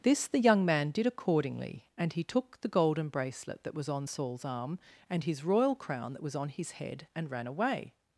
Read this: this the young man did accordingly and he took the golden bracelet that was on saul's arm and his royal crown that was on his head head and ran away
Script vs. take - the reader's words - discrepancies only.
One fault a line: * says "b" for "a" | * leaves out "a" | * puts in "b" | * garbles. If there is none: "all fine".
* leaves out "head"